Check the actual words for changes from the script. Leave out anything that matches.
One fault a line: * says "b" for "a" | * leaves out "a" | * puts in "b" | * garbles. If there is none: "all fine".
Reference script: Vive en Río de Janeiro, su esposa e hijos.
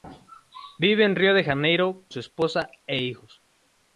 all fine